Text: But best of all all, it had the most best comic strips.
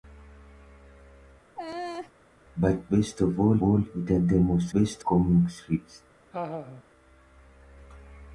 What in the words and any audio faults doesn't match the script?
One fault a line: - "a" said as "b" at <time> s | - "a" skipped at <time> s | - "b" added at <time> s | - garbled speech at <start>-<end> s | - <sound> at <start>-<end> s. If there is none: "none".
- laugh at 1.6-2.1 s
- laugh at 6.3-6.8 s